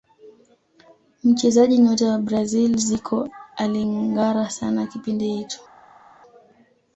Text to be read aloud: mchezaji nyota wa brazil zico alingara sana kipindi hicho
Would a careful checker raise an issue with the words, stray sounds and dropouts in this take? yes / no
no